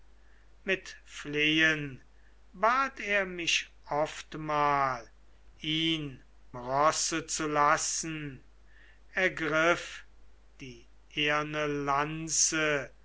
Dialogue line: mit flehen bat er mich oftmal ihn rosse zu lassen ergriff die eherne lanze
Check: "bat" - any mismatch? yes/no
no